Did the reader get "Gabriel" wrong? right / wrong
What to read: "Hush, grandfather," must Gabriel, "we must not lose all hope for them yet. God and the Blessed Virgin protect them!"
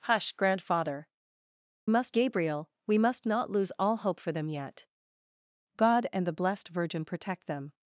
right